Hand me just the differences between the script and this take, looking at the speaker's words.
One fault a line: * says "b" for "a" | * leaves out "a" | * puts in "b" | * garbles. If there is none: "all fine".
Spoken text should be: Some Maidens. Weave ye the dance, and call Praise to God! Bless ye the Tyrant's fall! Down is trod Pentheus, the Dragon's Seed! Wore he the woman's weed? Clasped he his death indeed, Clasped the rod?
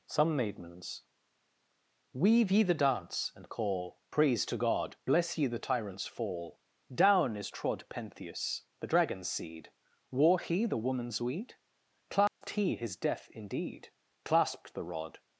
all fine